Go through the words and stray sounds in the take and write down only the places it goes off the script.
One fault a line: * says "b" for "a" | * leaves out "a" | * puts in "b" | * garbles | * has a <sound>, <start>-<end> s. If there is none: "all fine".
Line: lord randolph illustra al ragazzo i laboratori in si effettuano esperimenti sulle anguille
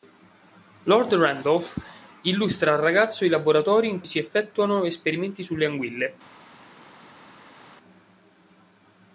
all fine